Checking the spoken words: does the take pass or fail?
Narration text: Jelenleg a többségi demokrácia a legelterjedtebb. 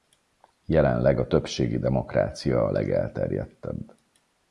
pass